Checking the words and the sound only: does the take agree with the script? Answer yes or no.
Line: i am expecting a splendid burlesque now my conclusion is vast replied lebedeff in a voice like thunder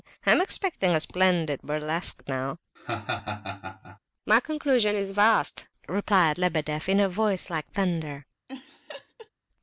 no